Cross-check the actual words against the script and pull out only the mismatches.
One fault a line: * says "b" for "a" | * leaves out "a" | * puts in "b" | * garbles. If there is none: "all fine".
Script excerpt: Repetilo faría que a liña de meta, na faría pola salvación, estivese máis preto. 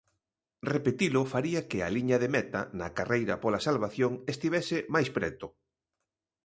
* says "carreira" for "faría"